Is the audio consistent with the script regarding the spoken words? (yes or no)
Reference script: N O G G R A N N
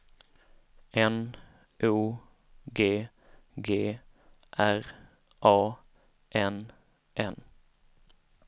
yes